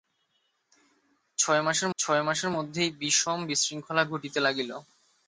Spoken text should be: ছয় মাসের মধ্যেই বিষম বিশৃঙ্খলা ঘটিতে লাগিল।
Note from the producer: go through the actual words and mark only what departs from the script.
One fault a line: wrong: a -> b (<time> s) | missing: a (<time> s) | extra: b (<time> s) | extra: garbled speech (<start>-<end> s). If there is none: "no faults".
extra: ছয় মাসের (2.0 s)